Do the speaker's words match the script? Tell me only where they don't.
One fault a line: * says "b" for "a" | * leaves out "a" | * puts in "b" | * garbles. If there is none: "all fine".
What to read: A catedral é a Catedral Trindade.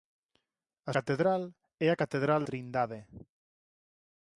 all fine